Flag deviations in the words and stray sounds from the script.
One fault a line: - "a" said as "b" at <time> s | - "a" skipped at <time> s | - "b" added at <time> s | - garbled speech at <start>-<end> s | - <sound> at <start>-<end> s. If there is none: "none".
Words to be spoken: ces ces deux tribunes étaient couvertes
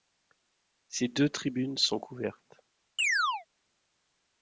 - "ces" skipped at 1.1 s
- "étaient" said as "sont" at 1.8 s
- chirp at 3.0-3.5 s